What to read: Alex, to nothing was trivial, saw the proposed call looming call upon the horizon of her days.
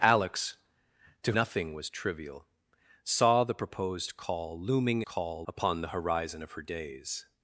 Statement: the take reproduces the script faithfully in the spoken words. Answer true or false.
true